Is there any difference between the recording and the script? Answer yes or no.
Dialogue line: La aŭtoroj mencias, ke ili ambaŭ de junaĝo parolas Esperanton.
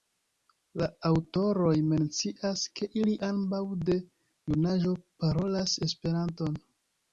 no